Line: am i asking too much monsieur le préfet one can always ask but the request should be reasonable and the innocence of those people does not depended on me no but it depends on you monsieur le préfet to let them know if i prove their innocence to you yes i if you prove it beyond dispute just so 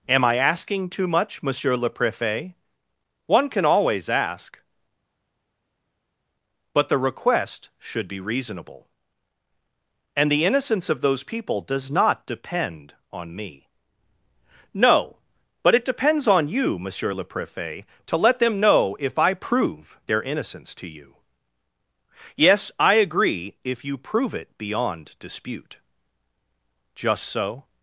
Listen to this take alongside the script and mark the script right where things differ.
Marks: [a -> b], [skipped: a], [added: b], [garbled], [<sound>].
am i asking too much monsieur le préfet one can always ask but the request should be reasonable and the innocence of those people does not [depended -> depend] on me no but it depends on you monsieur le préfet to let them know if i prove their innocence to you yes i [added: agree] if you prove it beyond dispute just so